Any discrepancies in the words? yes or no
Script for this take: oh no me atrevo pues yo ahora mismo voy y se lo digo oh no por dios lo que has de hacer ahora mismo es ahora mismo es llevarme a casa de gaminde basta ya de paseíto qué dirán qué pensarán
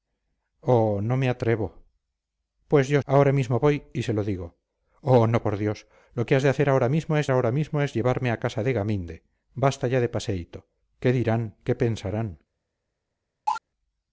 no